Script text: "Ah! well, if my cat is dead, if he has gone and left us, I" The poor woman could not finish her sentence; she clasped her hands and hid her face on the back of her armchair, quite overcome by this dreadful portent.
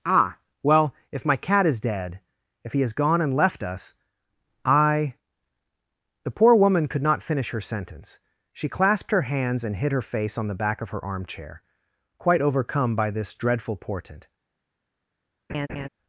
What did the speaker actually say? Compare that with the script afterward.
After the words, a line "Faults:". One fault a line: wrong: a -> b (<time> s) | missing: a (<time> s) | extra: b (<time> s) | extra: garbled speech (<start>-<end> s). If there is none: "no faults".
"Ah! well, if my cat is dead, if he has gone and left us, I" The poor woman could not finish her sentence; she clasped her hands and hid her face on the back of her armchair, quite overcome by this dreadful portent.
Faults:
no faults